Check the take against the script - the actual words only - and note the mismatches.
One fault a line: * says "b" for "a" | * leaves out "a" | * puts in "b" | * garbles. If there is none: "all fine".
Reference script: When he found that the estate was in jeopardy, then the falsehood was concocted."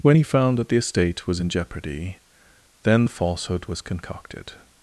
all fine